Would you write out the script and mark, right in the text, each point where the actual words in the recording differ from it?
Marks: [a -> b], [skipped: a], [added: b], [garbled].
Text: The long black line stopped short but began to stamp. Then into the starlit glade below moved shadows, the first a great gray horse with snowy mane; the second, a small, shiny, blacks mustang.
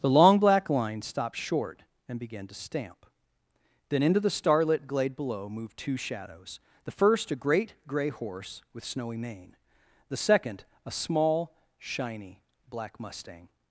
The long black line stopped short [but -> and] began to stamp. Then into the starlit glade below moved [added: two] shadows, the first a great gray horse with snowy mane; the second, a small, shiny, [blacks -> black] mustang.